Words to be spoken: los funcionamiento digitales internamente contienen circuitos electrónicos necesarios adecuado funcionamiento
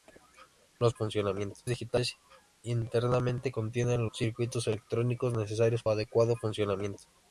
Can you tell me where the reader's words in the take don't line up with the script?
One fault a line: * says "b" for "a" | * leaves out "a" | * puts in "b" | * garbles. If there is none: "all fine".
all fine